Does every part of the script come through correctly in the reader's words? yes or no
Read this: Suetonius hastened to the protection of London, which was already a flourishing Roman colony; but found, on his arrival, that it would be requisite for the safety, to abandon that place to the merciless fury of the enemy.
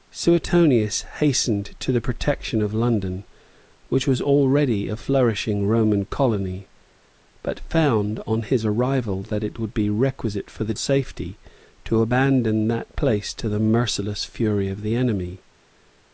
yes